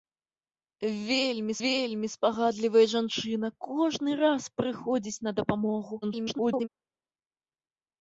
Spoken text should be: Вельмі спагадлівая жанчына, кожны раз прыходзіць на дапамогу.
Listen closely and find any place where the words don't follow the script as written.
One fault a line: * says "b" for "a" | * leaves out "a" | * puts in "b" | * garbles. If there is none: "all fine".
* puts in "вельмі"
* garbles